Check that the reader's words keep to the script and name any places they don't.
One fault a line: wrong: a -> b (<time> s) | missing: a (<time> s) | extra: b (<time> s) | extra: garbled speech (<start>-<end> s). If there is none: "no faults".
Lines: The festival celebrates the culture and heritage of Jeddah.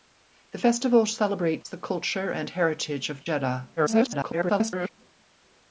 extra: garbled speech (3.8-4.9 s)